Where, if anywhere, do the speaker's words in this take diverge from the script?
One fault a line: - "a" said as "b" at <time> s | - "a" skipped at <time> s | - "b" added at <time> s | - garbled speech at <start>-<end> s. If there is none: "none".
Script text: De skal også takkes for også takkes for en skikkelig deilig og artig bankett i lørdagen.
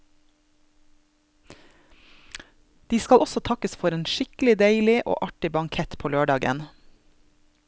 - "også takkes for" skipped at 4.0 s
- "i" said as "på" at 6.0 s